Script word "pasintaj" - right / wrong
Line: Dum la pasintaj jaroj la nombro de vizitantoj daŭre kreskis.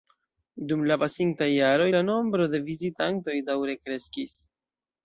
right